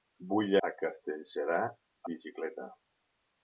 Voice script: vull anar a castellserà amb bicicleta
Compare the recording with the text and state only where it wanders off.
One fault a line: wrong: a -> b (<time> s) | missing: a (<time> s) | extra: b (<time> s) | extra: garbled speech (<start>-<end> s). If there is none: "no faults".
missing: anar (0.5 s)
missing: amb (1.6 s)